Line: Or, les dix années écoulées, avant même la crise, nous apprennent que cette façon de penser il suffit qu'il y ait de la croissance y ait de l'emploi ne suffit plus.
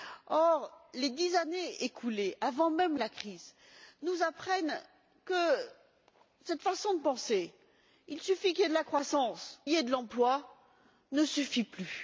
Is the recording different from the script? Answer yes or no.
no